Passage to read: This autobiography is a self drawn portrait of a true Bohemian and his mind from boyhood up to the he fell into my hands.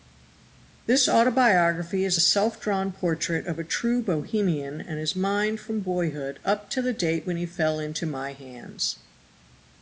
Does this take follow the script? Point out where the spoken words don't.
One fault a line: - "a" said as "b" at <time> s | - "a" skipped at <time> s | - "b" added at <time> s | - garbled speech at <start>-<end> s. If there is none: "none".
- "date when" added at 6.9 s